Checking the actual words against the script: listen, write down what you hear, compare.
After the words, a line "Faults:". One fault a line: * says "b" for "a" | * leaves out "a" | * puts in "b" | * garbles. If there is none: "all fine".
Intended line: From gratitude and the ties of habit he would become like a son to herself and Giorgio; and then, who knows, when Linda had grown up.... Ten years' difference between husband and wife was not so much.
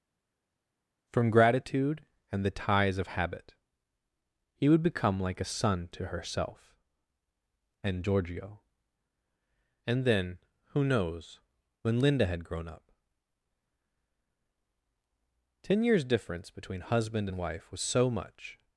From gratitude and the ties of habit he would become like a son to herself and Giorgio; and then, who knows, when Linda had grown up.... Ten years' difference between husband and wife was so much.
Faults:
* leaves out "not"